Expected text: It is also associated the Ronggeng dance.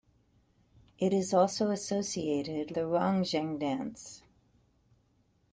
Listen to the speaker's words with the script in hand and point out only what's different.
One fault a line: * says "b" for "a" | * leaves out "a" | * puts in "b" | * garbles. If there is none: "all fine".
all fine